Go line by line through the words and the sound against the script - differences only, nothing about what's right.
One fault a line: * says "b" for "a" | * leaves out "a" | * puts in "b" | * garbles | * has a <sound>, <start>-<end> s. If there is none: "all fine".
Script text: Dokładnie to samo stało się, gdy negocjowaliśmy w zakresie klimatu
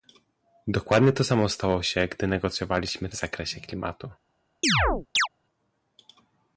* has a chirp, 4.6-5.3 s